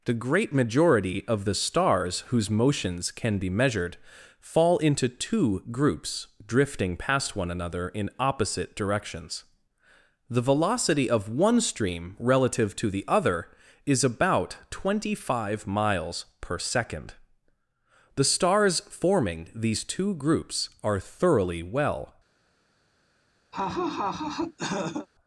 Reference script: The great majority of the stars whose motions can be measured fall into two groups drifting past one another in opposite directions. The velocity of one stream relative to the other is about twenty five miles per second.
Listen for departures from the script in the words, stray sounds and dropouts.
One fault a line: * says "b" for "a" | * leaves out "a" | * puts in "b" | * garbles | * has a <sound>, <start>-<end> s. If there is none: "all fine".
* puts in "The stars forming these two groups are thoroughly well"
* has a laugh, 23.5-25.1 s